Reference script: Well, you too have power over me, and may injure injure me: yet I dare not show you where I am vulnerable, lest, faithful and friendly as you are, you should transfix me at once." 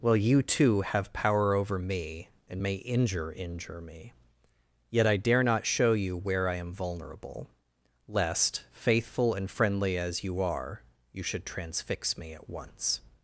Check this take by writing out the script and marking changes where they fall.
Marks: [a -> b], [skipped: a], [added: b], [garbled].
Well, you too have power over me, and may injure injure me: yet I dare not show you where I am vulnerable, lest, faithful and friendly as you are, you should transfix me at once."